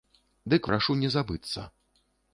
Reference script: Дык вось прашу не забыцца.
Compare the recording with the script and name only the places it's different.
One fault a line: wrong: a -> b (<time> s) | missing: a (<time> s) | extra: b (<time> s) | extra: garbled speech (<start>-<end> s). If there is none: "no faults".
missing: вось (0.7 s)